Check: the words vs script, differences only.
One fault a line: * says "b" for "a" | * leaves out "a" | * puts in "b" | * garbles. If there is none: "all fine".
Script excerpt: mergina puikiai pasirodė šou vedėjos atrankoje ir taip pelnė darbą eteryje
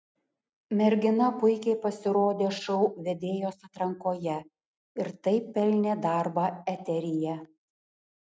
all fine